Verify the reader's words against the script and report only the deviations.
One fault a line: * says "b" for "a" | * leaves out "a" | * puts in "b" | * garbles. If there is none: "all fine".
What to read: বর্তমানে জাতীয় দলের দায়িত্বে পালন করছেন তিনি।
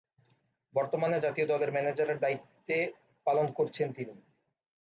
* puts in "ম্যানেজারের"